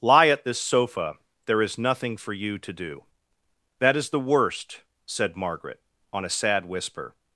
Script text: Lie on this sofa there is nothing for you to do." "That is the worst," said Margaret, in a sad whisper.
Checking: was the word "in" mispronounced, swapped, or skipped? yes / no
yes